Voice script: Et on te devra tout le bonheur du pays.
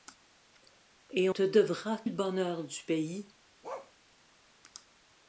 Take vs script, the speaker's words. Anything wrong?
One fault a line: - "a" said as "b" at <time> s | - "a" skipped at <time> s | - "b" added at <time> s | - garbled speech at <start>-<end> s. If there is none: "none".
- "on" skipped at 1.3 s
- "tout" skipped at 2.0 s